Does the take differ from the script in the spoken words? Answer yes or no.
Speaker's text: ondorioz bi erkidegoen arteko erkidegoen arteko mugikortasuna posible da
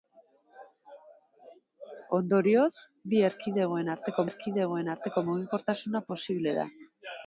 no